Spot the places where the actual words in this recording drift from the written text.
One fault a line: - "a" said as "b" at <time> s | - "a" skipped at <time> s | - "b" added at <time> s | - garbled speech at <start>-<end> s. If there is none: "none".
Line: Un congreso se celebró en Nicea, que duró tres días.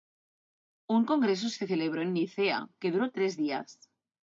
none